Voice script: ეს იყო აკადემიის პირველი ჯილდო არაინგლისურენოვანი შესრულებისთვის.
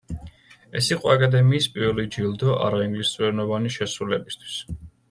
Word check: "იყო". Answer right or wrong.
right